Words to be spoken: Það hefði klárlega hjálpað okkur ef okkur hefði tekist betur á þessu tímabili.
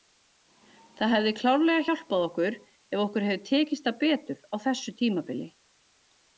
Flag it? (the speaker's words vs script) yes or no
yes